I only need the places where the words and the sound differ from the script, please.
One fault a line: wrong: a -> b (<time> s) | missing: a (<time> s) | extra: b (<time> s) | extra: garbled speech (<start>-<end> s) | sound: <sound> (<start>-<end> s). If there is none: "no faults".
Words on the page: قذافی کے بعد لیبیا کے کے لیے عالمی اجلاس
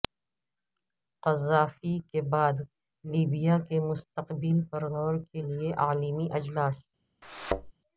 extra: مستقبل پر غور (3.8 s)
sound: thud (7.2-7.7 s)